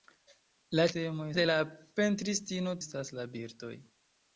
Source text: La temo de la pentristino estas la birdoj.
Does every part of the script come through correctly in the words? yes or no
yes